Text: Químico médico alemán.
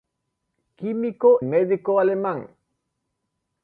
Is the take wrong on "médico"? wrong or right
right